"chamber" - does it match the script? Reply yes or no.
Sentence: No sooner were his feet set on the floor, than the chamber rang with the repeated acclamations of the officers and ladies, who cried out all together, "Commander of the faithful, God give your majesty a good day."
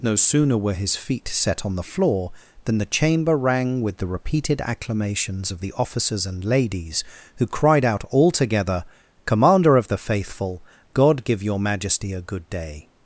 yes